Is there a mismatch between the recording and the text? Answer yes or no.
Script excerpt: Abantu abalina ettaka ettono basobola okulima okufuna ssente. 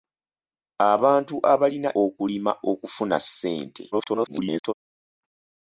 yes